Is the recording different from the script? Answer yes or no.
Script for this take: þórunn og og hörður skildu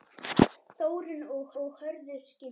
no